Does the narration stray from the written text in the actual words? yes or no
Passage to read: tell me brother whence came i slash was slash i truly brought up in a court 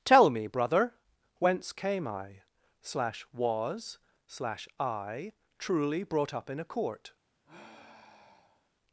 no